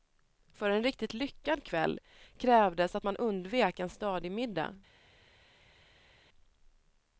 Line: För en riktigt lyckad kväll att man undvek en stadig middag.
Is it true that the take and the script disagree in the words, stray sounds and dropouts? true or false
true